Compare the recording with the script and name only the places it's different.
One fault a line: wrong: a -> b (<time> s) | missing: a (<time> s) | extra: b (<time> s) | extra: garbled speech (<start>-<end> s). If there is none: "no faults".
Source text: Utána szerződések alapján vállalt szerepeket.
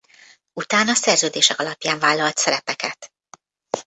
no faults